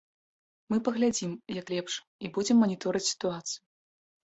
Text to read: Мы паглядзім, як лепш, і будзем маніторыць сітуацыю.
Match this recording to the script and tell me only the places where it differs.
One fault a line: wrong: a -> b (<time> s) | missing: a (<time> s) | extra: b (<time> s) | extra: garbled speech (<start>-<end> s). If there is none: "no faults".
no faults